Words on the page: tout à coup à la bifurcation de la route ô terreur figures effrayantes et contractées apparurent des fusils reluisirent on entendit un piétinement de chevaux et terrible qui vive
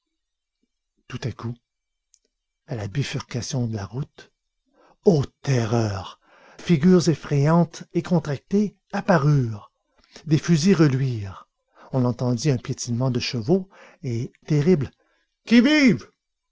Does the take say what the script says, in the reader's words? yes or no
yes